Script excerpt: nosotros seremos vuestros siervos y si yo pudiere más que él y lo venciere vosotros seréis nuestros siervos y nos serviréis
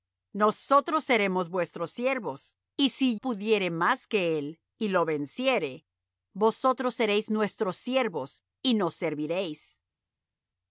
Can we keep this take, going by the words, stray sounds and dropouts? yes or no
no